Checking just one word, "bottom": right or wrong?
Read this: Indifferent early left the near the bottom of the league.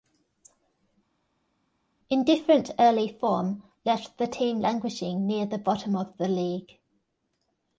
right